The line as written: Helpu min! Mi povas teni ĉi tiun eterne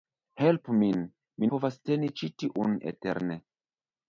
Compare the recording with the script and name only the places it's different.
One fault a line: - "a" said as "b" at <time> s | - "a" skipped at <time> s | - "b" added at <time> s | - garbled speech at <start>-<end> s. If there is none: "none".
none